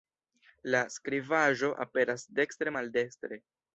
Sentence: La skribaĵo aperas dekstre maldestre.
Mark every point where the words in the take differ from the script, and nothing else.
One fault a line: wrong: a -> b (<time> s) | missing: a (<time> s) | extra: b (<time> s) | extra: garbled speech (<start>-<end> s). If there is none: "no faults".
no faults